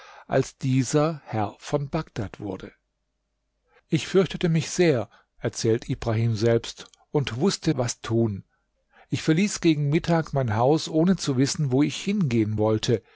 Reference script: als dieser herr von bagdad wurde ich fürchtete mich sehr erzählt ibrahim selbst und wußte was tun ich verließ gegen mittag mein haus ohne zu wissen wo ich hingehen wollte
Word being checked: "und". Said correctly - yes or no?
yes